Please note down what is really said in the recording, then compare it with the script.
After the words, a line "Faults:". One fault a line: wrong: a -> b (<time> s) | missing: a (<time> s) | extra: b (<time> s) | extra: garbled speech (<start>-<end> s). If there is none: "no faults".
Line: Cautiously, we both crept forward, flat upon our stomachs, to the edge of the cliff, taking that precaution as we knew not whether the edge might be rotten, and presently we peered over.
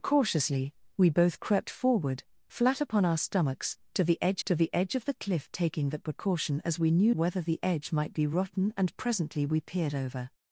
Cautiously, we both crept forward, flat upon our stomachs, to the edge to the edge of the cliff, taking that precaution as we knew whether the edge might be rotten, and presently we peered over.
Faults:
extra: to the edge (4.4 s)
missing: not (7.1 s)